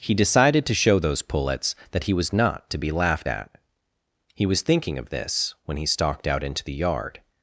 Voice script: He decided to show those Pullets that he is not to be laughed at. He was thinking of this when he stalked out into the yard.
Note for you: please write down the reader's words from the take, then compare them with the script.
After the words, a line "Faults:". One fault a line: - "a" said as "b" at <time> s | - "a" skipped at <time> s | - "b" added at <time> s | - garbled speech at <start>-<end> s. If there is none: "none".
He decided to show those Pullets that he was not to be laughed at. He was thinking of this when he stalked out into the yard.
Faults:
- "is" said as "was" at 2.1 s